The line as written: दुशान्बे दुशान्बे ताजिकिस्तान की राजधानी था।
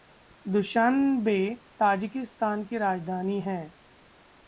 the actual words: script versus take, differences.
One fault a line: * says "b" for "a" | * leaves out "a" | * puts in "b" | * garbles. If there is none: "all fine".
* leaves out "दुशान्बे"
* says "है" for "था"